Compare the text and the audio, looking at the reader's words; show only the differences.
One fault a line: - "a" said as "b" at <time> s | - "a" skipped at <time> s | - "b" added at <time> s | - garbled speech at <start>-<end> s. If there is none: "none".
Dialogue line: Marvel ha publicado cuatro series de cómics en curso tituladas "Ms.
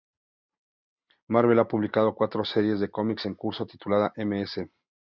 none